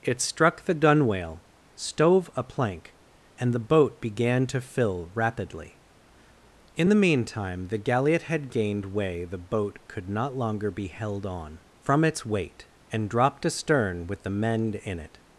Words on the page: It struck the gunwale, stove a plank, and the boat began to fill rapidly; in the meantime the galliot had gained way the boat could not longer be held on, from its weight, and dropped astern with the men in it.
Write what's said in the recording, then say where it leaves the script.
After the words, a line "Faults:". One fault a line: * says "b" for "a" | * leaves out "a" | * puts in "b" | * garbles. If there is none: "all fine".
It struck the gunwale, stove a plank, and the boat began to fill rapidly; in the meantime the galliot had gained way the boat could not longer be held on, from its weight, and dropped astern with the men in it.
Faults:
all fine